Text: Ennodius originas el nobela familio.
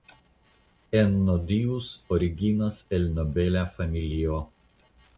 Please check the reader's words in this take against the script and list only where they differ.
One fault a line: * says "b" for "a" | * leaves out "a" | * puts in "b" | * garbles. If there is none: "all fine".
all fine